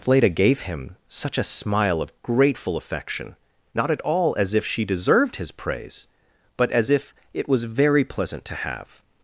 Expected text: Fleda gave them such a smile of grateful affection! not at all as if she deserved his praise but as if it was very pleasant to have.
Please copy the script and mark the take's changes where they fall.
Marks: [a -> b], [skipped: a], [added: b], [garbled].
Fleda gave [them -> him] such a smile of grateful affection! not at all as if she deserved his praise but as if it was very pleasant to have.